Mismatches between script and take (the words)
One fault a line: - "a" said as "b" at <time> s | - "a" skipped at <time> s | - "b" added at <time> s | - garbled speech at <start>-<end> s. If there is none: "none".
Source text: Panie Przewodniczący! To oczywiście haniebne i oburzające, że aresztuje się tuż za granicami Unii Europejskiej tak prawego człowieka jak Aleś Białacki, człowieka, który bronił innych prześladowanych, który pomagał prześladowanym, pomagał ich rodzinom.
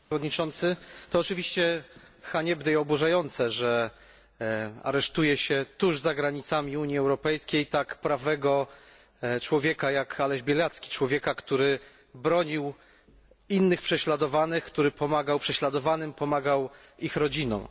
none